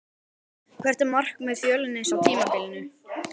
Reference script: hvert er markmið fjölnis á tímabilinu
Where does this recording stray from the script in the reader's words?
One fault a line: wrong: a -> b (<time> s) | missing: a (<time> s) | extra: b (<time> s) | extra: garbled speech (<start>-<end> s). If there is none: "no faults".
no faults